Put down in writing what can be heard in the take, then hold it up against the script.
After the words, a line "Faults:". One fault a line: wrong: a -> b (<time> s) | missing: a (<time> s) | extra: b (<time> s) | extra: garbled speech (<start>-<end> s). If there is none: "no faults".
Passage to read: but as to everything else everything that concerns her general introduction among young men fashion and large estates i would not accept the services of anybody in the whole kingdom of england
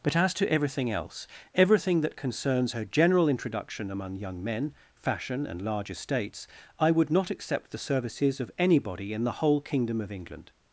but as to everything else everything that concerns her general introduction among young men fashion and large estates i would not accept the services of anybody in the whole kingdom of england
Faults:
no faults